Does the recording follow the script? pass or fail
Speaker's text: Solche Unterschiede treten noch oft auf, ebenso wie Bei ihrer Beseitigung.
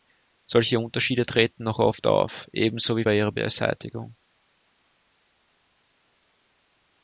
pass